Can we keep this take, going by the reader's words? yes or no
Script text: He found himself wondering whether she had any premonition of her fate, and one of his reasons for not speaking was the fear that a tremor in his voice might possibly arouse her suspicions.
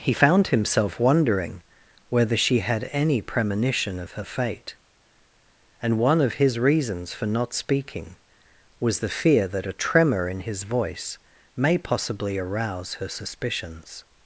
no